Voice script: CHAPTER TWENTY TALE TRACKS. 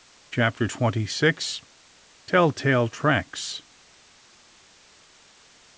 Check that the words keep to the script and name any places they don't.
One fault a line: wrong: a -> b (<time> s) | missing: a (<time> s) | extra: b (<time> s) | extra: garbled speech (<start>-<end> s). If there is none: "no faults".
extra: SIX TELL (1.1 s)